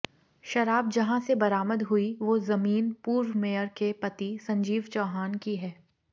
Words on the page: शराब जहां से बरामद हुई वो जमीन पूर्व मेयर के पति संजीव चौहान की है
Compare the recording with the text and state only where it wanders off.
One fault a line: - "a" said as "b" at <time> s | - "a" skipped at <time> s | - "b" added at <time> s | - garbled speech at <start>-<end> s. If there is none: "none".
none